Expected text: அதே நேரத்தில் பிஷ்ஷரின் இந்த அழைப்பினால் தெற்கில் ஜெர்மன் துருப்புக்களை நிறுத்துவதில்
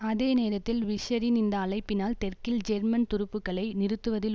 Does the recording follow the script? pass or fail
pass